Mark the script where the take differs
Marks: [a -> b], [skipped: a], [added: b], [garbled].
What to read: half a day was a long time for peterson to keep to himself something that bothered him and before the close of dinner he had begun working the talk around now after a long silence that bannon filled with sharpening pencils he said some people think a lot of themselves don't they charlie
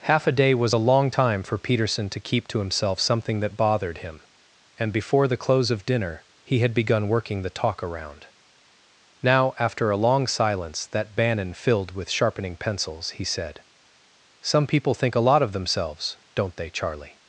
half a day was a long time for peterson to keep to himself something that bothered him and before the close of dinner he had begun working the talk around now after a long silence that bannon filled with sharpening pencils he said some people think a lot of themselves don't they charlie